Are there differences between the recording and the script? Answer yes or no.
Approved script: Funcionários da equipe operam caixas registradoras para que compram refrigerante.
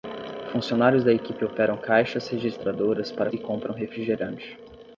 no